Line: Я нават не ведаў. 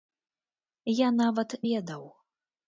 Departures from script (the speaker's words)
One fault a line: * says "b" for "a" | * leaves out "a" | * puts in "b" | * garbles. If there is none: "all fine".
* leaves out "не"